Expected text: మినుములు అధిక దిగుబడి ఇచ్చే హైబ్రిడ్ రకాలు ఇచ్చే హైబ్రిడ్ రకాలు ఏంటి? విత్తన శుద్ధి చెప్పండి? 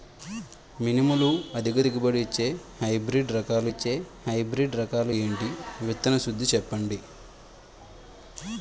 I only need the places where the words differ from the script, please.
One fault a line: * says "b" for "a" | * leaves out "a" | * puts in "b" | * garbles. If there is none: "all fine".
all fine